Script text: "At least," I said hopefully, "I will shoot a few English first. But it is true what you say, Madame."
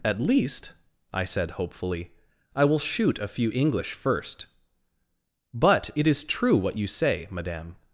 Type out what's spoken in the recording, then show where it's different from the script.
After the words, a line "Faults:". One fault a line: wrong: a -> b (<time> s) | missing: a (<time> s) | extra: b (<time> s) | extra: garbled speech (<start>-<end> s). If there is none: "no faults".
"At least," I said hopefully, "I will shoot a few English first. But it is true what you say, Madame."
Faults:
no faults